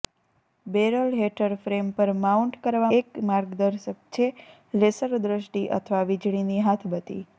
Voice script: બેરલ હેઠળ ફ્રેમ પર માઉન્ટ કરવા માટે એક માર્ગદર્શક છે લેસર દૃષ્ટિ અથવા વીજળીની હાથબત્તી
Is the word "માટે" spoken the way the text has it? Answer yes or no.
no